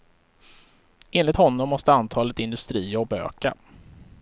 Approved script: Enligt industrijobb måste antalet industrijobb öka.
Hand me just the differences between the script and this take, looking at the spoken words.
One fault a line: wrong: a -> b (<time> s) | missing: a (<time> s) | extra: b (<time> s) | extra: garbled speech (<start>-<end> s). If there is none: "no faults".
wrong: industrijobb -> honom (1.3 s)